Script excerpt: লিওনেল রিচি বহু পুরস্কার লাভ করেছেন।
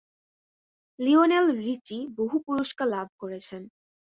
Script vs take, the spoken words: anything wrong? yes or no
no